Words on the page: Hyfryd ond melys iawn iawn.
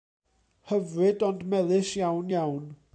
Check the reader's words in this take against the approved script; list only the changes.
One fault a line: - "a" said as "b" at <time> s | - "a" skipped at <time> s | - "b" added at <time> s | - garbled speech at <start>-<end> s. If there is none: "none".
none